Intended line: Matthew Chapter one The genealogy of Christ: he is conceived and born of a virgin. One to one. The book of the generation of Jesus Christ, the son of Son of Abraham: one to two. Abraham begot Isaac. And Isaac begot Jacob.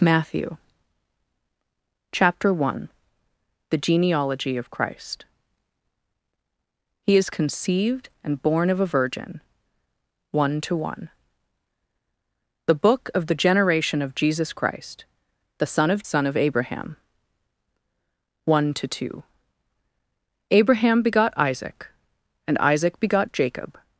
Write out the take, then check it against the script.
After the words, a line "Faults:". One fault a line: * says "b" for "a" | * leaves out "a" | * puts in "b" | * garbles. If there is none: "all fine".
Matthew Chapter one The genealogy of Christ: he is conceived and born of a virgin. One to one. The book of the generation of Jesus Christ, the son of Son of Abraham: one to two. Abraham begot Isaac. And Isaac begot Jacob.
Faults:
all fine